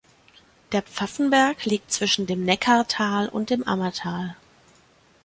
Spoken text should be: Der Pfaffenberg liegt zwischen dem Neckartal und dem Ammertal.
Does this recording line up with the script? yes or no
yes